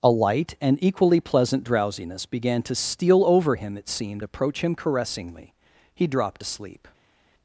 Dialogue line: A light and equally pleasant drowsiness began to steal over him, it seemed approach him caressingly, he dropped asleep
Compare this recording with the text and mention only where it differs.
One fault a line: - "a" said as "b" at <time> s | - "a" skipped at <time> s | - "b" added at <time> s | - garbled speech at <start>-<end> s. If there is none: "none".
none